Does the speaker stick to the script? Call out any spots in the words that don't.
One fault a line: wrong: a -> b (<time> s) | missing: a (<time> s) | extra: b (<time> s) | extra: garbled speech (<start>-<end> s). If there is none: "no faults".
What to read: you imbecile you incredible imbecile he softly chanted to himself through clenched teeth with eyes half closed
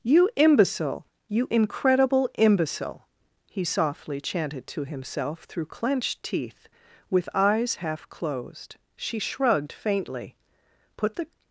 extra: she shrugged faintly put the (8.9 s)